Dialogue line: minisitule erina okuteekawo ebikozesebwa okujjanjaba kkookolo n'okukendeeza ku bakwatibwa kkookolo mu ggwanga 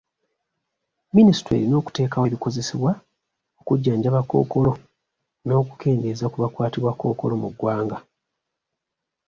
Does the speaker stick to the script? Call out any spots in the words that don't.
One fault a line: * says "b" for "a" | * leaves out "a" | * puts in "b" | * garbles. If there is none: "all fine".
all fine